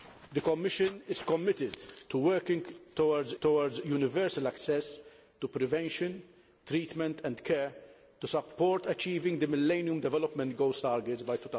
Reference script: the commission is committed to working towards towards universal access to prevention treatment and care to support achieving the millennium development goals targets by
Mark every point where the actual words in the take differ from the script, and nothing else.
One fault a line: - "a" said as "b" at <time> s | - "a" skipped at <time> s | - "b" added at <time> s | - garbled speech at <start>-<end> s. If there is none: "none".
none